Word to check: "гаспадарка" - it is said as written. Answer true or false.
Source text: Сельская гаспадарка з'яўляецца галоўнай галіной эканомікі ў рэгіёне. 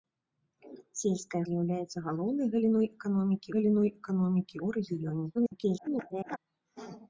false